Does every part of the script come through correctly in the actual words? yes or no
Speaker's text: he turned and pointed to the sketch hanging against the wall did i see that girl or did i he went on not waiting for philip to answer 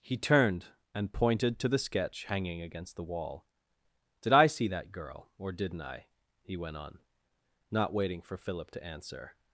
no